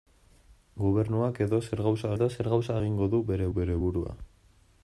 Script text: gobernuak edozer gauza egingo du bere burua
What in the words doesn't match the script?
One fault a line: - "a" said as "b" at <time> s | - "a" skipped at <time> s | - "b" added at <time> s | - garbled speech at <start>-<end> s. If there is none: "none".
- "edozer gauza" added at 2.1 s
- "bere" added at 3.6 s